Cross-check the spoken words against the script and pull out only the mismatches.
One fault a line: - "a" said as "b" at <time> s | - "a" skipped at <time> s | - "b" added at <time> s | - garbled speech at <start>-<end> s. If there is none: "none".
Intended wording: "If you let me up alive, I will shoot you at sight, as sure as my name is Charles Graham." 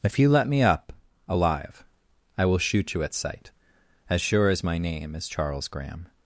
none